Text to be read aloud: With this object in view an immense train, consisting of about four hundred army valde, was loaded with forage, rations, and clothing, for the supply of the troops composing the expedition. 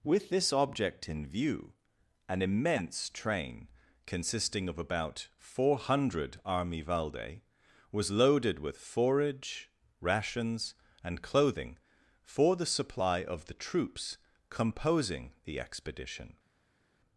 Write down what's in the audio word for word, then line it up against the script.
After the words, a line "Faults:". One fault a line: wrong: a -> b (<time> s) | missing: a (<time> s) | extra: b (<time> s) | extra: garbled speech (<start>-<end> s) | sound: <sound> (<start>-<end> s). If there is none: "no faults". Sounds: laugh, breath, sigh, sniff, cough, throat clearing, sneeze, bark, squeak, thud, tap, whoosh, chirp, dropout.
With this object in view an immense train, consisting of about four hundred army valde, was loaded with forage, rations, and clothing, for the supply of the troops composing the expedition.
Faults:
no faults